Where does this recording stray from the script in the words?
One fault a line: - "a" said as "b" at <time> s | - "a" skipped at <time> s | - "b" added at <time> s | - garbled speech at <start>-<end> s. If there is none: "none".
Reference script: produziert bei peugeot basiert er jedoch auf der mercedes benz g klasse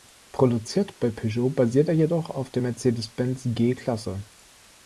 none